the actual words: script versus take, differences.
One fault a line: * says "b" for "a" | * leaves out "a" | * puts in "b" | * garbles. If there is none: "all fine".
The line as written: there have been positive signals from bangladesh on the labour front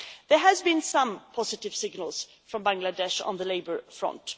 * puts in "some"